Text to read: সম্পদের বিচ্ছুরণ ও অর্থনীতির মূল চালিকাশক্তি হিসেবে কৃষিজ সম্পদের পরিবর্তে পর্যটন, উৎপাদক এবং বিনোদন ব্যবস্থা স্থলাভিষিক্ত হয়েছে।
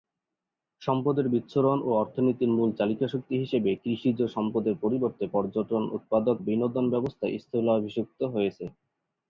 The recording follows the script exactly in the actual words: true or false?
false